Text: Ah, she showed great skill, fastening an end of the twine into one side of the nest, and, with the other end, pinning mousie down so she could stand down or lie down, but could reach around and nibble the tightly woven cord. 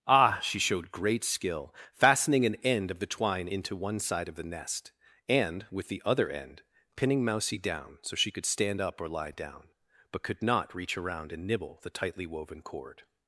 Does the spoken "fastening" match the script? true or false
true